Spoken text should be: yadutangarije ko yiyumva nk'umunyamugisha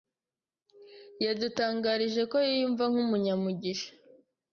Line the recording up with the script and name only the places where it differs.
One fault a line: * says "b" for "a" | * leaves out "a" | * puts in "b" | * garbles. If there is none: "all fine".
all fine